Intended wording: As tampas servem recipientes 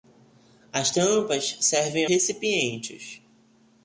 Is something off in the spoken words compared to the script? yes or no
no